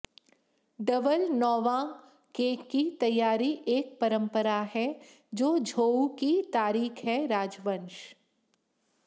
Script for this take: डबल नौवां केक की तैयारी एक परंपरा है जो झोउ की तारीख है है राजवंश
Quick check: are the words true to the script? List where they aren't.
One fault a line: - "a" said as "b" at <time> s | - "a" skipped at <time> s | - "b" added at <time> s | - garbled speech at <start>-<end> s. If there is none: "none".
- "है" skipped at 7.3 s